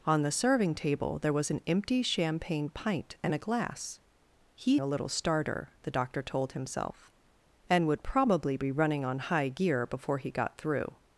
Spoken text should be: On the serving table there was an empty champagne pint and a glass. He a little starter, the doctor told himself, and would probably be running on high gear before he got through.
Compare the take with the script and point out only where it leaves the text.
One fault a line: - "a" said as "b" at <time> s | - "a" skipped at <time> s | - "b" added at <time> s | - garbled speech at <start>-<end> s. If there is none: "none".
none